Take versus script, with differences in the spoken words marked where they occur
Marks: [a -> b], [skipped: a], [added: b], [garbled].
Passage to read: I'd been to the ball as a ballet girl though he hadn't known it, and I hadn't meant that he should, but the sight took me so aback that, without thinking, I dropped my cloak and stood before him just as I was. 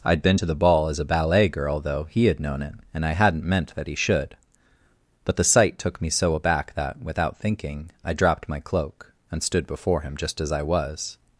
I'd been to the ball as a ballet girl though he [hadn't -> had] known it, and I hadn't meant that he should, but the sight took me so aback that, without thinking, I dropped my cloak and stood before him just as I was.